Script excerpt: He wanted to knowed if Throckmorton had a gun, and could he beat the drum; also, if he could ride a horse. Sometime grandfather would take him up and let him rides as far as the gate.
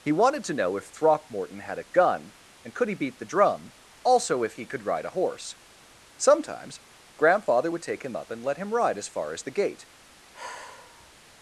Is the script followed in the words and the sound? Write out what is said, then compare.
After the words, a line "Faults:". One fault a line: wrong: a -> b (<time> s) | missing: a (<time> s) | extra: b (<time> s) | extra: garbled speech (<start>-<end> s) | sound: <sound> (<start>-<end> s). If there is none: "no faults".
He wanted to know if Throckmorton had a gun, and could he beat the drum; also, if he could ride a horse. Sometimes grandfather would take him up and let him ride as far as the gate.
Faults:
wrong: knowed -> know (0.5 s)
wrong: Sometime -> Sometimes (6.2 s)
wrong: rides -> ride (8.7 s)
sound: sigh (10.3-11.1 s)